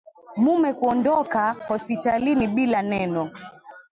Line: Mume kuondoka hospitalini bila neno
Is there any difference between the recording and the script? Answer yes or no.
no